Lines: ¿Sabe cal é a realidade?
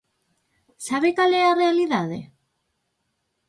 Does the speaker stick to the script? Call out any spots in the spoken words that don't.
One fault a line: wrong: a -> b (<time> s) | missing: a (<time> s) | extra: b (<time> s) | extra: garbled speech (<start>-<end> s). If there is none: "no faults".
no faults